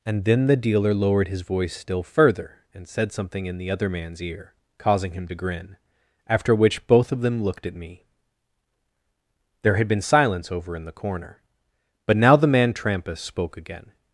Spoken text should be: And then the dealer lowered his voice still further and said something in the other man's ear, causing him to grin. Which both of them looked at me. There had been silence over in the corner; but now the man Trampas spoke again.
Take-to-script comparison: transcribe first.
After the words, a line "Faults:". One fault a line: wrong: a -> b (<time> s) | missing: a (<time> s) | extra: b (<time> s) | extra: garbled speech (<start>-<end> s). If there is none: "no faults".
And then the dealer lowered his voice still further and said something in the other man's ear, causing him to grin. After which both of them looked at me. There had been silence over in the corner; but now the man Trampas spoke again.
Faults:
extra: After (6.3 s)